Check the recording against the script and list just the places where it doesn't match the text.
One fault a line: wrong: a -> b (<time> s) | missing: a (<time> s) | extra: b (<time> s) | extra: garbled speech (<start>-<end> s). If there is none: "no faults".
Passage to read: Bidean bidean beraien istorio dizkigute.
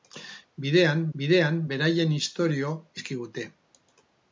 no faults